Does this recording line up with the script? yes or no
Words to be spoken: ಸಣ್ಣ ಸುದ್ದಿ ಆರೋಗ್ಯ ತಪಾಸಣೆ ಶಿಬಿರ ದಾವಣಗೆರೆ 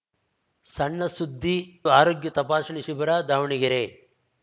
yes